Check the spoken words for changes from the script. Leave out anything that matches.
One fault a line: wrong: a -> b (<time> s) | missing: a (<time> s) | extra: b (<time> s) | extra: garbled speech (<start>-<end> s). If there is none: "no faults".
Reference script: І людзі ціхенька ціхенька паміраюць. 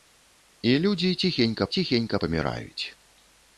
no faults